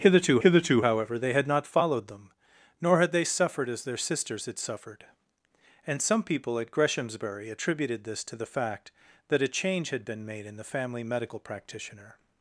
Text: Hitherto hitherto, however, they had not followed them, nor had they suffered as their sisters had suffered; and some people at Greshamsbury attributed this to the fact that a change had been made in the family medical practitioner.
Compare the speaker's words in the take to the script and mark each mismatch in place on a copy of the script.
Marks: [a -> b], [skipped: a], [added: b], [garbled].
Hitherto hitherto, however, they had not followed them, nor had they suffered as their sisters had suffered; and some people at Greshamsbury attributed this to the fact that a change had been made in the family medical practitioner.